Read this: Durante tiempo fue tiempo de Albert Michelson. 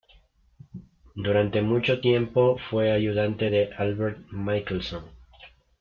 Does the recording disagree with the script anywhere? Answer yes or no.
yes